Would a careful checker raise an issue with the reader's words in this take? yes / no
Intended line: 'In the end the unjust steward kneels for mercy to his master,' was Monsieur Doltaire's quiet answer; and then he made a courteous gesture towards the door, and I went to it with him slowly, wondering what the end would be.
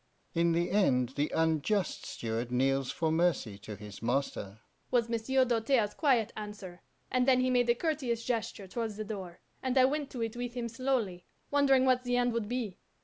no